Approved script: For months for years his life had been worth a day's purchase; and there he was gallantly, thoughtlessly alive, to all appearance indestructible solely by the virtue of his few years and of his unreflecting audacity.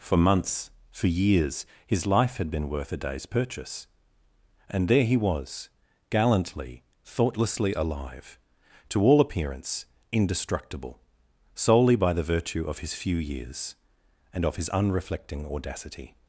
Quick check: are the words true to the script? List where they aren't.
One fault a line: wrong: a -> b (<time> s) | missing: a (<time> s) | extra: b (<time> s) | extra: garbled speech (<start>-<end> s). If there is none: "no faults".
no faults